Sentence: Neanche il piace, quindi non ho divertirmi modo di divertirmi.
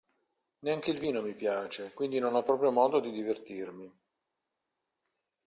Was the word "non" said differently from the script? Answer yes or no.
no